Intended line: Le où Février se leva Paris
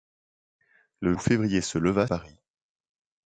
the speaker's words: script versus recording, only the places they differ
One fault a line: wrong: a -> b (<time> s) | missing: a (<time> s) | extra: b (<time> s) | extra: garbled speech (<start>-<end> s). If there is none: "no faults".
no faults